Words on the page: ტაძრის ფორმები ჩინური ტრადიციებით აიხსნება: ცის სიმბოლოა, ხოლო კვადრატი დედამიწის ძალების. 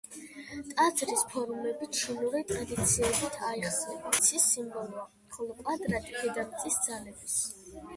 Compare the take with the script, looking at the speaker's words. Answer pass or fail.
pass